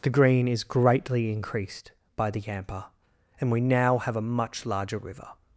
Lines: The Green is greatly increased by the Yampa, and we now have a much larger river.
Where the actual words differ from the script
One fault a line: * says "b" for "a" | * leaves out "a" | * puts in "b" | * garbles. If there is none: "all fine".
all fine